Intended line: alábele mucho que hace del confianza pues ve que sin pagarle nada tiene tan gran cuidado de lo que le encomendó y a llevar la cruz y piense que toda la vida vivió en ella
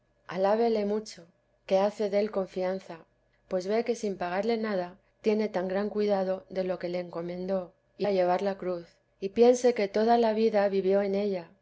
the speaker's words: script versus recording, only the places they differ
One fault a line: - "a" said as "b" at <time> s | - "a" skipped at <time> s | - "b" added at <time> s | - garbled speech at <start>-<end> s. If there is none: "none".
none